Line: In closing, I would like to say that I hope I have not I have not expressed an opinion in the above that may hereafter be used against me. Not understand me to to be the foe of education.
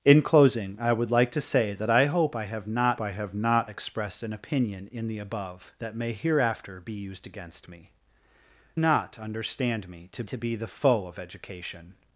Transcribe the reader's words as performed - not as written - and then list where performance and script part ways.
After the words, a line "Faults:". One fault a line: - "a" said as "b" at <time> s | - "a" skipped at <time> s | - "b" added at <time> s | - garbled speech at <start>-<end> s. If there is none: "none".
In closing, I would like to say that I hope I have not I have not expressed an opinion in the above that may hereafter be used against me. Not understand me to to be the foe of education.
Faults:
none